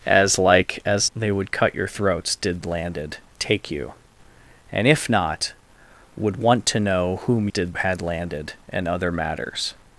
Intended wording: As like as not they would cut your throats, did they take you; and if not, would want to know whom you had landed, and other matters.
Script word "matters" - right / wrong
right